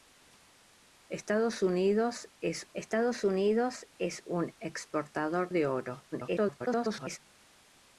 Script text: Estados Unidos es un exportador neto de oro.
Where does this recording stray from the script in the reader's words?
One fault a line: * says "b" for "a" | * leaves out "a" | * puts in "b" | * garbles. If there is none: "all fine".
* puts in "estados Unidos es"
* leaves out "neto"
* garbles